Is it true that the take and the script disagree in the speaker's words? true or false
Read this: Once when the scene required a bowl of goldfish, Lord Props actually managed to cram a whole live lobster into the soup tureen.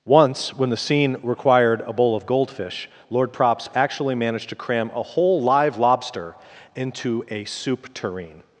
true